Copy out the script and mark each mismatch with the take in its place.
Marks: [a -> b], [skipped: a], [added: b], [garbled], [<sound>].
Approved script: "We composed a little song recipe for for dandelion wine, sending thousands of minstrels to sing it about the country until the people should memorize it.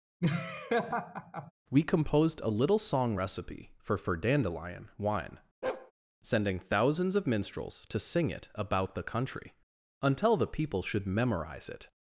[laugh] "We composed a little song recipe for for dandelion wine, [bark] sending thousands of minstrels to sing it about the country until the people should memorize it.